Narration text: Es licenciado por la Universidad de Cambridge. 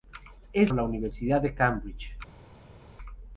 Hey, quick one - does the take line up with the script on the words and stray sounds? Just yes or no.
no